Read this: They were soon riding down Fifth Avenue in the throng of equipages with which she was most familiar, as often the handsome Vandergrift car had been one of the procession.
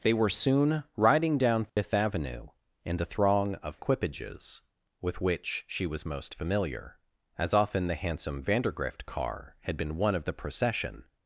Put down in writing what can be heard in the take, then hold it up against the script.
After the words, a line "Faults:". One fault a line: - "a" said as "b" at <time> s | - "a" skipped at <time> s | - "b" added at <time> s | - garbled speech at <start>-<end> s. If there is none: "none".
They were soon riding down Fifth Avenue in the throng of equipages with which she was most familiar, as often the handsome Vandergrift car had been one of the procession.
Faults:
none